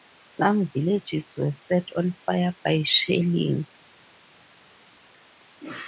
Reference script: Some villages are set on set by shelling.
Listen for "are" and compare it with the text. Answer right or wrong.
wrong